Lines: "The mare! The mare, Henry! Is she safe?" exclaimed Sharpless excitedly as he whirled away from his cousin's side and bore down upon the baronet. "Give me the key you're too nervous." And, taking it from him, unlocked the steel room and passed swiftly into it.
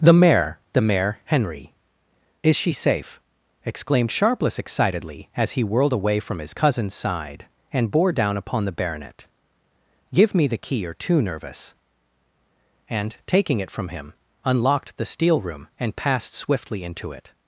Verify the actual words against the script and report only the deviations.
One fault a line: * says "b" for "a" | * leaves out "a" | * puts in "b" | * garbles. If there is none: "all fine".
all fine